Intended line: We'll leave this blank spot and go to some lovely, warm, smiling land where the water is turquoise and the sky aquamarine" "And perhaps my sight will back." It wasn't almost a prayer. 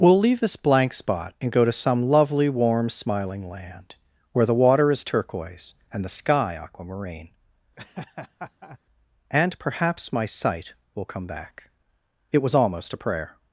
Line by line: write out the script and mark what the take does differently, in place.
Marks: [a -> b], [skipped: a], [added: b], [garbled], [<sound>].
We'll leave this blank spot and go to some lovely, warm, smiling land where the water is turquoise and the sky aquamarine" [laugh] "And perhaps my sight will [added: come] back." It [wasn't -> was] almost a prayer.